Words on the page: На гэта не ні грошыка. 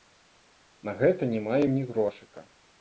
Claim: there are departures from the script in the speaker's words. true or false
true